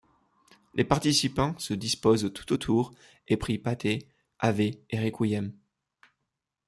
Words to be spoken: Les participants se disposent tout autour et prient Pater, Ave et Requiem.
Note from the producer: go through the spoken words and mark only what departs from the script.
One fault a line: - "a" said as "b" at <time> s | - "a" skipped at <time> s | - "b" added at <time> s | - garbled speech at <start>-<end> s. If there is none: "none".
none